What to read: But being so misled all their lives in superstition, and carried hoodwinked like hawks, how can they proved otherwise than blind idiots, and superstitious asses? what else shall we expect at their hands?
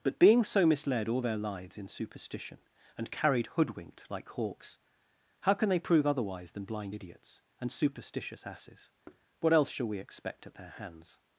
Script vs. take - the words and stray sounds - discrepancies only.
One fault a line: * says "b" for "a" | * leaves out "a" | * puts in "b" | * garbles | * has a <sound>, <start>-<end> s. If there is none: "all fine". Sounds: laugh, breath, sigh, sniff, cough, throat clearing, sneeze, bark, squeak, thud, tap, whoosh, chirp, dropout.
* says "prove" for "proved"
* has a thud, 9.0-9.3 s